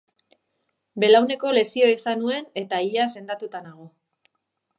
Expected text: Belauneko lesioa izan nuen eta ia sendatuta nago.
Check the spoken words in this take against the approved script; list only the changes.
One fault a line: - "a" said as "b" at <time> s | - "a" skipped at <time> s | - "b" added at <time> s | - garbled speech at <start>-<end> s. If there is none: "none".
none